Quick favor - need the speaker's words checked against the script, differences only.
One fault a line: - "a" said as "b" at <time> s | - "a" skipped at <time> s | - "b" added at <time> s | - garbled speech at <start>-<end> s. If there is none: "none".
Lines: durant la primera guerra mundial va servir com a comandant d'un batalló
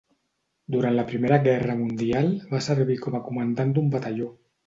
none